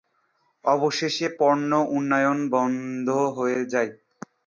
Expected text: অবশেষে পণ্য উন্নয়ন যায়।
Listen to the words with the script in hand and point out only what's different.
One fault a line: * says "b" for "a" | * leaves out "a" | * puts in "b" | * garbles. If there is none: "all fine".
* puts in "বন্ধ হয়ে"